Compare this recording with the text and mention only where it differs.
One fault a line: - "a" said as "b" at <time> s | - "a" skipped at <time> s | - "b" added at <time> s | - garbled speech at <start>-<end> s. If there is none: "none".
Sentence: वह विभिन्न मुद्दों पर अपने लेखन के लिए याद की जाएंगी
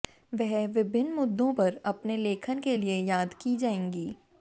none